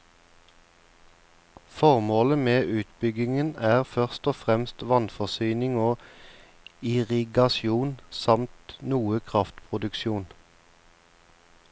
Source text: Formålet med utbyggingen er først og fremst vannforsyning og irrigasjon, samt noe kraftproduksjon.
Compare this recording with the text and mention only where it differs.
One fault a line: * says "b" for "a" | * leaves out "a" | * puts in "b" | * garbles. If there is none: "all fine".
all fine